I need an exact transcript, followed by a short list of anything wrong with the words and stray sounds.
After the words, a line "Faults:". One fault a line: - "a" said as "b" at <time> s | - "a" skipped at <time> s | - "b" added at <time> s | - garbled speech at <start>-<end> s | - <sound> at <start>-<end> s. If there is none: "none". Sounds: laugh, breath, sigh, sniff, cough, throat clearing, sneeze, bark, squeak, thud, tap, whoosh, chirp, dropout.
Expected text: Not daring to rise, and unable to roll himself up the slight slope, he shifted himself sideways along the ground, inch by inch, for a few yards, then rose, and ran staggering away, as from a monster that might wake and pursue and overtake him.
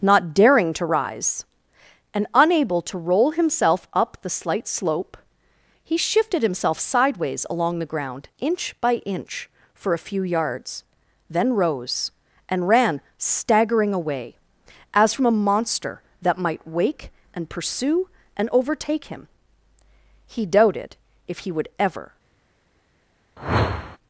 Not daring to rise, and unable to roll himself up the slight slope, he shifted himself sideways along the ground, inch by inch, for a few yards, then rose, and ran staggering away, as from a monster that might wake and pursue and overtake him. He doubted if he would ever
Faults:
- "He doubted if he would ever" added at 20.3 s
- whoosh at 23.4-24.0 s